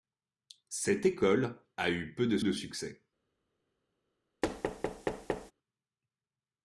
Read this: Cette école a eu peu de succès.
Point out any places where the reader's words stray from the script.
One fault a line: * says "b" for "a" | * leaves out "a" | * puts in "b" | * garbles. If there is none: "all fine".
* puts in "de"